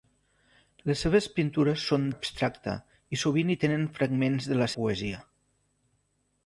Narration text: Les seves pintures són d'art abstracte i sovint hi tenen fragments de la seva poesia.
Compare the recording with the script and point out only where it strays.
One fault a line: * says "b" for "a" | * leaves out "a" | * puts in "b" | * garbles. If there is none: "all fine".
* leaves out "d'art"
* leaves out "seva"